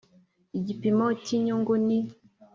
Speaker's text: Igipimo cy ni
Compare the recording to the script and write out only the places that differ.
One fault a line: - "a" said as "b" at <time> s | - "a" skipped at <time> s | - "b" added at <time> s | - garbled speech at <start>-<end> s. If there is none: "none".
- "inyungu" added at 1.4 s